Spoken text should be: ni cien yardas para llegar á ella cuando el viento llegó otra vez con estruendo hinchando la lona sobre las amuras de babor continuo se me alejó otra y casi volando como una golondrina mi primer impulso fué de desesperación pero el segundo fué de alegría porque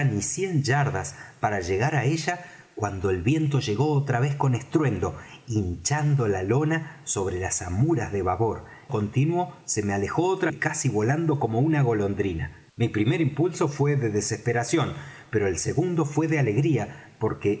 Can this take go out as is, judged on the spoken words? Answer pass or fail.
pass